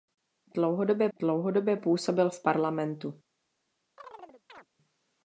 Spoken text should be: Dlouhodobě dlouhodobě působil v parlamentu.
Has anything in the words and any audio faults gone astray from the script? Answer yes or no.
yes